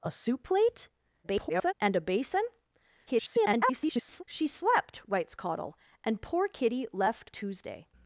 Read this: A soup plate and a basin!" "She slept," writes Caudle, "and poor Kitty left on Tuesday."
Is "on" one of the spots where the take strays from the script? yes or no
yes